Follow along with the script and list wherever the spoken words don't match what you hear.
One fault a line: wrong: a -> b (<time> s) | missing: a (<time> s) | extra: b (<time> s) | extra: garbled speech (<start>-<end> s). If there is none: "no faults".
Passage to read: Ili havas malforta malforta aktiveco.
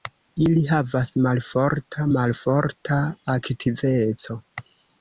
no faults